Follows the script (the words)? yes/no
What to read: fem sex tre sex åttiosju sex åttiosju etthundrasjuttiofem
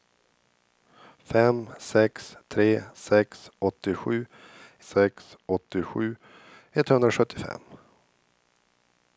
yes